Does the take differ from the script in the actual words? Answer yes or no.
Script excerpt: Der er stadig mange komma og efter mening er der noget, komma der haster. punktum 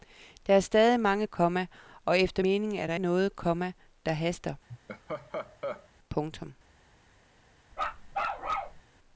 no